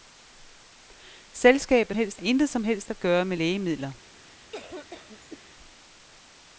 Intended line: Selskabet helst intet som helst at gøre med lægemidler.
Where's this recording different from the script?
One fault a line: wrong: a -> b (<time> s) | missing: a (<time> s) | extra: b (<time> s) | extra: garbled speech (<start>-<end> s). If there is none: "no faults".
no faults